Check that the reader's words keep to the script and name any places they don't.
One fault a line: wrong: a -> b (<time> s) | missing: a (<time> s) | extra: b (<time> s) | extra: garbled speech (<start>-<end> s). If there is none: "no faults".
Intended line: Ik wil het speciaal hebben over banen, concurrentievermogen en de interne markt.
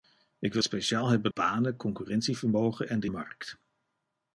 missing: het (0.6 s)
missing: over (1.3 s)
missing: interne (3.1 s)